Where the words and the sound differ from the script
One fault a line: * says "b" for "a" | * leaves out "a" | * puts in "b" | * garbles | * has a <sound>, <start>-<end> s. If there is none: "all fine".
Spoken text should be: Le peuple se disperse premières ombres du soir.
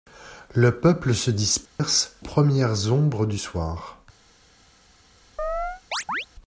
* has a dropout, 1.7-1.8 s
* has a chirp, 5.4-6.3 s